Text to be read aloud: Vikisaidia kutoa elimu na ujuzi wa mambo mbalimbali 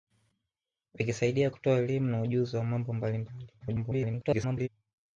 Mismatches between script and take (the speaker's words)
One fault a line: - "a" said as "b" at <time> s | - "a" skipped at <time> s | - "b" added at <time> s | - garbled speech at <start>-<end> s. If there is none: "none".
- garbled speech at 3.6-4.7 s